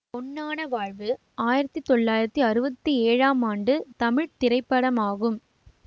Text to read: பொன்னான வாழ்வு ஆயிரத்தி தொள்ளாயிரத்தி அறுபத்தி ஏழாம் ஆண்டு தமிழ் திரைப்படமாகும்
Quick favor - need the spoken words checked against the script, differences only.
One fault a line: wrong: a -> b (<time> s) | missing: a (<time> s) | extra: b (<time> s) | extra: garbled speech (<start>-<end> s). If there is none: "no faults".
no faults